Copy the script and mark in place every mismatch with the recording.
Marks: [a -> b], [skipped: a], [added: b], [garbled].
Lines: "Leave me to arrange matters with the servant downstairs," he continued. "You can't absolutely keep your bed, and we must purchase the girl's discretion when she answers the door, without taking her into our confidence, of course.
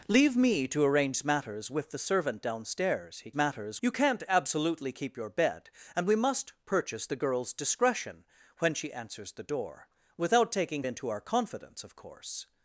"Leave me to arrange matters with the servant downstairs," he [continued. -> matters] "You can't absolutely keep your bed, and we must purchase the girl's discretion when she answers the door, without taking [skipped: her] into our confidence, of course.